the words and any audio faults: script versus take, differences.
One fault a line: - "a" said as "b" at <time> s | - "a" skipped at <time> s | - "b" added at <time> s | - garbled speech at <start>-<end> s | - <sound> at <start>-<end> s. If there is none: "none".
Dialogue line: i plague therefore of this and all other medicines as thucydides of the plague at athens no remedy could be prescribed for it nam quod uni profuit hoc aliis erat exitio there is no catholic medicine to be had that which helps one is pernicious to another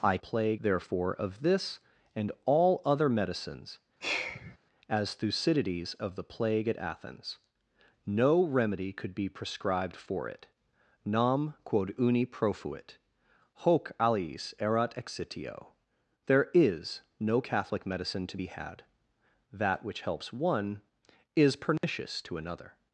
- sigh at 4.0-4.6 s
- dropout at 21.8-21.8 s